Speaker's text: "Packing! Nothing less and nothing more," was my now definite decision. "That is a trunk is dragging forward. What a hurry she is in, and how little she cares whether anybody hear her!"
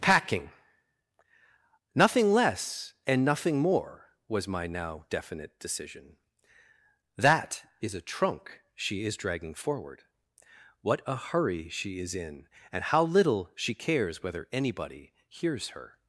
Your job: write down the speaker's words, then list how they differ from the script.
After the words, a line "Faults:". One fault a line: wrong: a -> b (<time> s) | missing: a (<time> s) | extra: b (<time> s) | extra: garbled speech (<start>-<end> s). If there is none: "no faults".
"Packing! Nothing less and nothing more," was my now definite decision. "That is a trunk she is dragging forward. What a hurry she is in, and how little she cares whether anybody hears her!"
Faults:
extra: she (8.7 s)
wrong: hear -> hears (15.3 s)